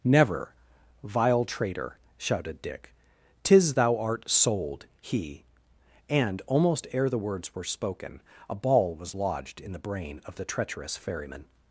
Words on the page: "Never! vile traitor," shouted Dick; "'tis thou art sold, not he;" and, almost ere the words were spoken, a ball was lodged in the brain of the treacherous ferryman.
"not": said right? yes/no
no